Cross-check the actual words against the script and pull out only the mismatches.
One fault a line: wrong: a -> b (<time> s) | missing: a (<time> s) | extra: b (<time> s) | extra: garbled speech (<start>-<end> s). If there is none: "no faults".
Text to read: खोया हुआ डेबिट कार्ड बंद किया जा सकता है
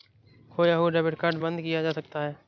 no faults